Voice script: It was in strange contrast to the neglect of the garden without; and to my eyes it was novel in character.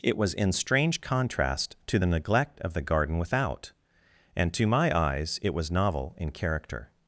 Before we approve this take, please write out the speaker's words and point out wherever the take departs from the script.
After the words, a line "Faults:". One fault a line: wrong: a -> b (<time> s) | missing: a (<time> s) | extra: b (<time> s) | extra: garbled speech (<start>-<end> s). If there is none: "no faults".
It was in strange contrast to the neglect of the garden without; and to my eyes it was novel in character.
Faults:
no faults